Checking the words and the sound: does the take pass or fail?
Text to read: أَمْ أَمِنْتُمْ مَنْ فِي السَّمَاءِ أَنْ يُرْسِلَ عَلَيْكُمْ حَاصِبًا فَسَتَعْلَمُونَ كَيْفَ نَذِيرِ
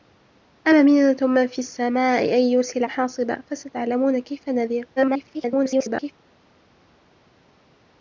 fail